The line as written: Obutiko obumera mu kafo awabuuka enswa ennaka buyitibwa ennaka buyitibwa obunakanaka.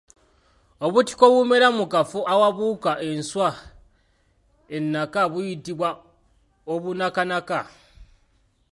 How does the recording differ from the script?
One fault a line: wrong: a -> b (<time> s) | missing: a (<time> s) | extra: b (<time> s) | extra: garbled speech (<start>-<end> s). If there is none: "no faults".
missing: ennaka buyitibwa (5.9 s)